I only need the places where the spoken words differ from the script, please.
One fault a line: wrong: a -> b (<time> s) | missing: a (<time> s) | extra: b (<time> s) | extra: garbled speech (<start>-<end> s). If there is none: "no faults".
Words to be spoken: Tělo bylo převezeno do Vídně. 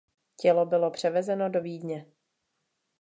no faults